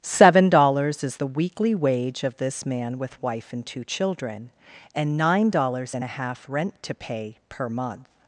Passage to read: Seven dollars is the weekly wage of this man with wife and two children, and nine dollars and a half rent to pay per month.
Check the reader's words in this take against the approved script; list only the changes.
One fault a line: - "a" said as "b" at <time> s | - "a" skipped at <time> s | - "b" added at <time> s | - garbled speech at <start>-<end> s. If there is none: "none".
none